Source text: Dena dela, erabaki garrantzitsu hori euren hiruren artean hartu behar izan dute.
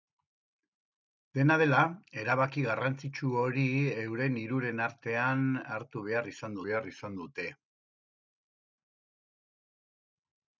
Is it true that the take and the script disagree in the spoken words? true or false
true